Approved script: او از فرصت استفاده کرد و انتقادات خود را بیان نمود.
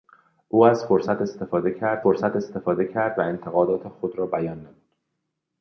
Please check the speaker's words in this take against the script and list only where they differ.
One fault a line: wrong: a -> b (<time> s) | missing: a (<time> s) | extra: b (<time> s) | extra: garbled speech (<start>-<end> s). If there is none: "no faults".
extra: فرصت استفاده کرد (2.0 s)